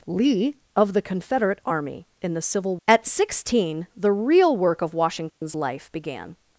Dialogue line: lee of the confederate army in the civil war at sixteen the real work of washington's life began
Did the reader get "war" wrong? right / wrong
wrong